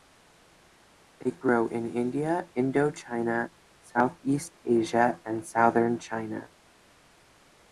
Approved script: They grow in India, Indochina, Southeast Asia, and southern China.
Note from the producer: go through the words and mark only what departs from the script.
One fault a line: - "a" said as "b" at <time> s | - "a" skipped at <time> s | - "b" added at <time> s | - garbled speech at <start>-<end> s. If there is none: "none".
none